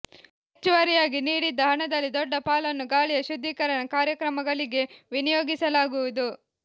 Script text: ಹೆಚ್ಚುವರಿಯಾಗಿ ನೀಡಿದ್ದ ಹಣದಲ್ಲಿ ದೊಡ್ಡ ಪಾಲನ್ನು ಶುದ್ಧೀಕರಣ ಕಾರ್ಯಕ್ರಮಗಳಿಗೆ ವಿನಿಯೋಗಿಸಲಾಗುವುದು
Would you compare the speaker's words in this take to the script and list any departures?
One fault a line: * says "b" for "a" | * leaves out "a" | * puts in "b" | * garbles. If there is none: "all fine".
* puts in "ಗಾಳಿಯ"